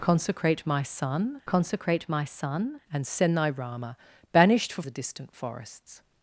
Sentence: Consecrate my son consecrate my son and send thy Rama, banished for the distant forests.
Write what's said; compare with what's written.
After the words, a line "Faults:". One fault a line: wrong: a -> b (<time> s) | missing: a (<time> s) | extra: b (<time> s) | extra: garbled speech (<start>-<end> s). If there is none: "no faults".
Consecrate my son consecrate my son and send thy Rama, banished for the distant forests.
Faults:
no faults